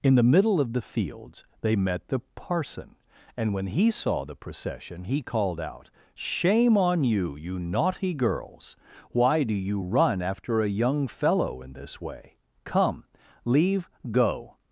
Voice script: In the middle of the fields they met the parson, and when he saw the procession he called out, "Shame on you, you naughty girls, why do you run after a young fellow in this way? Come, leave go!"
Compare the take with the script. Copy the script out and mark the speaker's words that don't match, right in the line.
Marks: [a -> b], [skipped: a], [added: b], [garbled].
In the middle of the fields they met the parson, and when he saw the procession he called out, "Shame on you, you naughty girls, why do you run after a young fellow in this way? Come, leave go!"